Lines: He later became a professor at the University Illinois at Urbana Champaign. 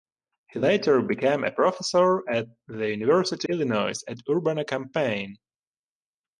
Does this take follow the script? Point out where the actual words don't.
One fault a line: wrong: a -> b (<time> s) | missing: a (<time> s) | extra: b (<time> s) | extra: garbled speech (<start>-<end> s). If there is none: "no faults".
no faults